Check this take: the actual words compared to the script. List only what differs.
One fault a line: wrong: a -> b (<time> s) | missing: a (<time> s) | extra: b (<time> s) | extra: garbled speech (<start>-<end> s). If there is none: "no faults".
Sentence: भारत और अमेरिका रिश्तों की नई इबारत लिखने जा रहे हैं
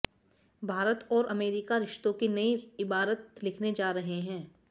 no faults